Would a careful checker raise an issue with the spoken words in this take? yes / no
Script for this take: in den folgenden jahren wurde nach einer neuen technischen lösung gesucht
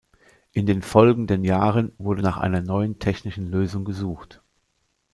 no